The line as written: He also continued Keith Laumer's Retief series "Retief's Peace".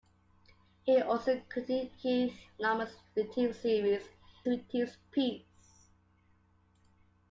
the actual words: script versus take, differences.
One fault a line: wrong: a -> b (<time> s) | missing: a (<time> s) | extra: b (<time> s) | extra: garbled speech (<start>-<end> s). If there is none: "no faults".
no faults